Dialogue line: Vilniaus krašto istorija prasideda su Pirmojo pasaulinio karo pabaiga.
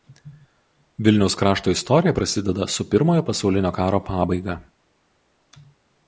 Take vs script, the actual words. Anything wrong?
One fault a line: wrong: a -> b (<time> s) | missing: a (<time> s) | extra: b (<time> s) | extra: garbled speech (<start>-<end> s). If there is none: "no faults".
no faults